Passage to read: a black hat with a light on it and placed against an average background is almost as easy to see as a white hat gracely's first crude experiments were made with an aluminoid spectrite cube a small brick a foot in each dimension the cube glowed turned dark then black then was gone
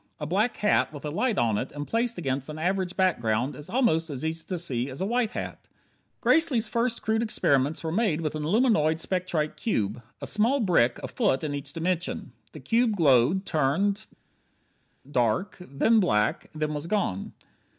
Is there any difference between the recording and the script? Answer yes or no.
no